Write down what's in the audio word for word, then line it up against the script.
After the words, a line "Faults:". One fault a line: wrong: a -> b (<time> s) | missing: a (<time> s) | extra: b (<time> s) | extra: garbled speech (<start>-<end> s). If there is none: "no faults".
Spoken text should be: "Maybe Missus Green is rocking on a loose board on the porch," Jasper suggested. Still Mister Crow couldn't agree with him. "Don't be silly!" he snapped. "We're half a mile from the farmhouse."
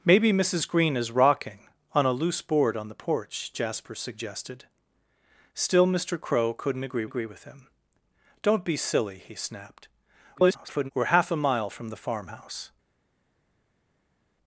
"Maybe Missus Green is rocking on a loose board on the porch," Jasper suggested. Still Mister Crow couldn't agree agree with him. "Don't be silly!" he snapped. [garbled] "We're half a mile from the farmhouse."
Faults:
extra: agree (7.0 s)
extra: garbled speech (10.3-10.9 s)